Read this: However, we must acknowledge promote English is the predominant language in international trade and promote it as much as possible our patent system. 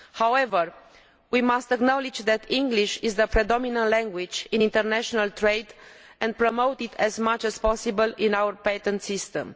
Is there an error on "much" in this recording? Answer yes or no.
no